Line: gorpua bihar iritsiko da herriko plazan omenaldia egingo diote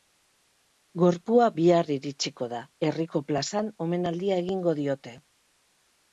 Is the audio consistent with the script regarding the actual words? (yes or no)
yes